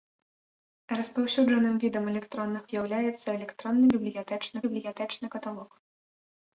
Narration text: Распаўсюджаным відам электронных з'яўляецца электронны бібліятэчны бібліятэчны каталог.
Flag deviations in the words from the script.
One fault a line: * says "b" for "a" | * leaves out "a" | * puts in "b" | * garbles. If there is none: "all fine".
all fine